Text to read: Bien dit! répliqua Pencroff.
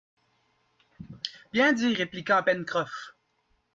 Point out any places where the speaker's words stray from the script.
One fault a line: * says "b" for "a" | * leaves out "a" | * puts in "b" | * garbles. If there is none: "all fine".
all fine